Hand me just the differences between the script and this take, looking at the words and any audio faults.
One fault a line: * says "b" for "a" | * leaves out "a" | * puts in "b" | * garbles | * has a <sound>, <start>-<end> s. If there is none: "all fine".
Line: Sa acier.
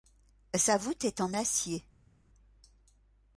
* puts in "voûte est en"